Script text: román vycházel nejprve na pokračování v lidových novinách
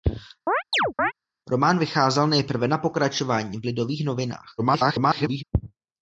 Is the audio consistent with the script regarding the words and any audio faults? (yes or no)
no